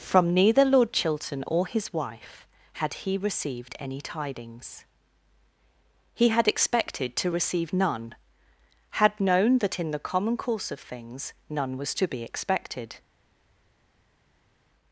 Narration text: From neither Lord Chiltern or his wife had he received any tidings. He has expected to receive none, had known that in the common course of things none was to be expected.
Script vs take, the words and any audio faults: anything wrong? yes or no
yes